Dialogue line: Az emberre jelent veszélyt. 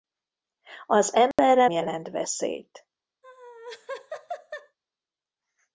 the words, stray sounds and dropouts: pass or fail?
fail